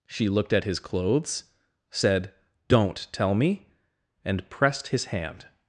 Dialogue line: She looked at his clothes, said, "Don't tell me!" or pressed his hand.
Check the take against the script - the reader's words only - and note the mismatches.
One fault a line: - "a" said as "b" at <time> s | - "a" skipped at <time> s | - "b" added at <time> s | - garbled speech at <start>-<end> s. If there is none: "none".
- "or" said as "and" at 4.2 s